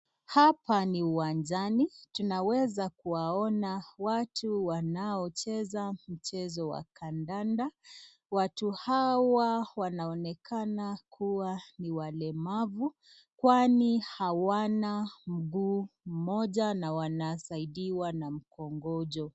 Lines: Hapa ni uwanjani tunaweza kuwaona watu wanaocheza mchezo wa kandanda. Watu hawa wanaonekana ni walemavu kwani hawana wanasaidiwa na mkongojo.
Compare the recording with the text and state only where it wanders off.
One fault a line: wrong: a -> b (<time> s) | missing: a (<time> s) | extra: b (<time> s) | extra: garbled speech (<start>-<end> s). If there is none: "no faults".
extra: kuwa (11.1 s)
extra: mguu mmoja na (15.3 s)